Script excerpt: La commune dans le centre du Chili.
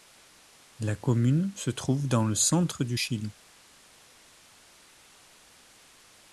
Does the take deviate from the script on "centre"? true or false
false